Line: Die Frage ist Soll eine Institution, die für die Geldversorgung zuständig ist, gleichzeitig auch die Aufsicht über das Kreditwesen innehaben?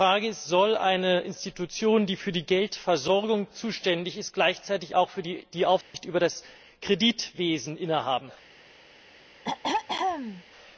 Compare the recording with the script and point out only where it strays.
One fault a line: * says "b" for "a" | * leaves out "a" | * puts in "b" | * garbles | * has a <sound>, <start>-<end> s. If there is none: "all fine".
* has a dropout, 5.8-5.9 s
* has a throat clearing, 9.4-10.4 s